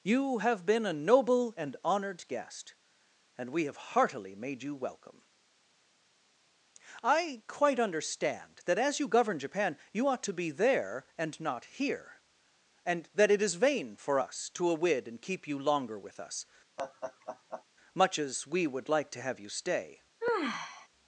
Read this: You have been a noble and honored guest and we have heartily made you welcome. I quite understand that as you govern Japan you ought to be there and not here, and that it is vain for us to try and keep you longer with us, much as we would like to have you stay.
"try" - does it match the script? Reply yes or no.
no